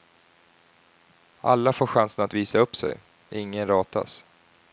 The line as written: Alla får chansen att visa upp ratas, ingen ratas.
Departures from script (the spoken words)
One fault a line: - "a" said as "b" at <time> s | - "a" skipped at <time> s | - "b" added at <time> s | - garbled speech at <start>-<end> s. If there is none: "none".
- "ratas" said as "sig" at 2.8 s